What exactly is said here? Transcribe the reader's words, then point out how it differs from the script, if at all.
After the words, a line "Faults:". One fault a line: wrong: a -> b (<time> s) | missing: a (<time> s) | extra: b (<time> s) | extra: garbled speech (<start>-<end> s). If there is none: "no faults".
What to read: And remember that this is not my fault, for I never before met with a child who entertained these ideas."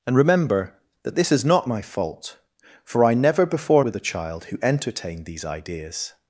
And remember that this is not my fault, for I never before with a child who entertained these ideas."
Faults:
missing: met (3.8 s)